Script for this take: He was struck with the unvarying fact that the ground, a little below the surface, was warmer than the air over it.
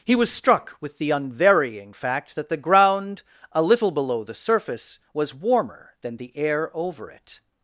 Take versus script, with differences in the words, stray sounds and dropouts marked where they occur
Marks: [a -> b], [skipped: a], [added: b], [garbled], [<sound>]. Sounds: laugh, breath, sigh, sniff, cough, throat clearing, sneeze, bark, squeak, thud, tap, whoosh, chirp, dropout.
He was struck with the unvarying fact that the ground, a little below the surface, was warmer than the air over it.